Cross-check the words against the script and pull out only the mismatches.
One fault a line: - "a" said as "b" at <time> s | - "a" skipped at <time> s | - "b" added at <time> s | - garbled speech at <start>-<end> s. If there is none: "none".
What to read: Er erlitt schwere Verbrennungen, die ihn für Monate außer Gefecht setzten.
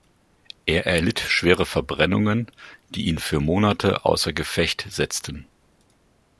none